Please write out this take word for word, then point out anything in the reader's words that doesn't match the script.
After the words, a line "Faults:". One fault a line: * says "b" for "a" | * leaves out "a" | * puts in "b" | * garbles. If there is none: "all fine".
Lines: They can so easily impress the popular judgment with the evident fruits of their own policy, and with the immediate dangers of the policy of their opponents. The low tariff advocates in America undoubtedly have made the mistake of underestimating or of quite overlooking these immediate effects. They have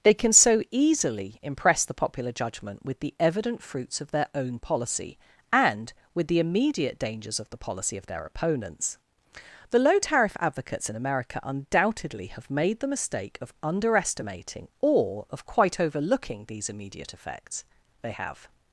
They can so easily impress the popular judgment with the evident fruits of their own policy, and with the immediate dangers of the policy of their opponents. The low tariff advocates in America undoubtedly have made the mistake of underestimating or of quite overlooking these immediate effects. They have
Faults:
all fine